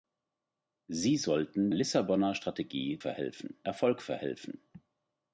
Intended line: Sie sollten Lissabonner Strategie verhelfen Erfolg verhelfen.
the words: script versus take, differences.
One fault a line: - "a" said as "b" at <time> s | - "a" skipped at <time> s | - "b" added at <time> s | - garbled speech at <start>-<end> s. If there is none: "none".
none